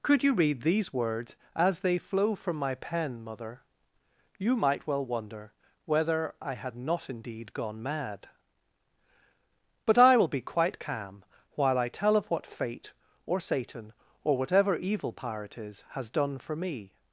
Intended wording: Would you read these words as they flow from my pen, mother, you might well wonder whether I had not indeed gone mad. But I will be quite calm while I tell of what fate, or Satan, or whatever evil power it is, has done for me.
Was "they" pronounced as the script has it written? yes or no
yes